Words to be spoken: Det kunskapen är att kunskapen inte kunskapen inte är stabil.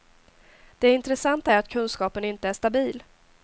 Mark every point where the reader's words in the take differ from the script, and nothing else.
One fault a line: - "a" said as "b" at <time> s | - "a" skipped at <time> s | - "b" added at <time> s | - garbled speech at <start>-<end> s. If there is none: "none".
- "kunskapen" said as "intressanta" at 0.9 s
- "kunskapen inte" skipped at 2.5 s